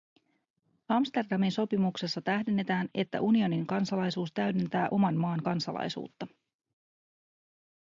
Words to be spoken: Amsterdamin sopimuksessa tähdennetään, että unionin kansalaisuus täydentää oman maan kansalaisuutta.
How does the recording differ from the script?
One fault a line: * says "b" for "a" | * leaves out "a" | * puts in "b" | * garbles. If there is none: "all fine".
all fine